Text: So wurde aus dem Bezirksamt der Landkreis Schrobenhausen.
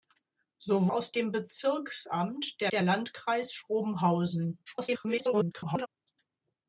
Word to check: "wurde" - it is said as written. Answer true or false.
false